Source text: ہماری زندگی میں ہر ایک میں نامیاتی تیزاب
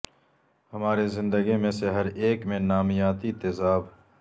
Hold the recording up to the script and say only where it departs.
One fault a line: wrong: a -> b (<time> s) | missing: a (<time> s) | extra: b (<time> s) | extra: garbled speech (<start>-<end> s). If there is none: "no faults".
extra: سے (1.7 s)